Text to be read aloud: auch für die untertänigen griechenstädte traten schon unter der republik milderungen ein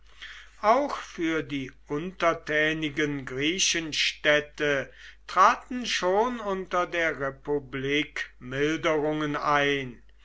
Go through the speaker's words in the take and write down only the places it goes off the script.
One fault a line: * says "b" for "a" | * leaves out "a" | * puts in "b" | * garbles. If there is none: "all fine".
all fine